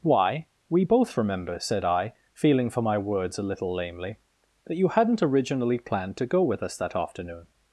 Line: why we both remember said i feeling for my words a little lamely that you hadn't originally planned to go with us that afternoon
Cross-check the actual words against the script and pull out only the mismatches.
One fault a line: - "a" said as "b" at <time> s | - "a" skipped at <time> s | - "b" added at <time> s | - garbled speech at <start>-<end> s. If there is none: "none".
none